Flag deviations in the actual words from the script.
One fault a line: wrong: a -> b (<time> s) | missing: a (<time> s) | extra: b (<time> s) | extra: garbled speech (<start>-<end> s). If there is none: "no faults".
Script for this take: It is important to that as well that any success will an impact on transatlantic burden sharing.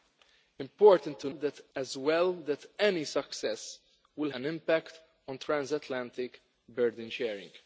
no faults